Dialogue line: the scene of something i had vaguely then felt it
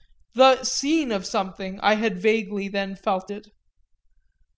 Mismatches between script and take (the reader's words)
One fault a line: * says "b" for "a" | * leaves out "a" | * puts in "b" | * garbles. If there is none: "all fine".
all fine